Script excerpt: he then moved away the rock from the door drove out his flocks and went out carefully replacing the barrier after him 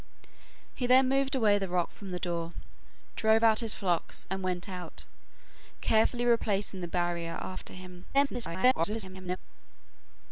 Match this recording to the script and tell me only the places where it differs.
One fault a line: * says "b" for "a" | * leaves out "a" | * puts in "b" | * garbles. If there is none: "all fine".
* garbles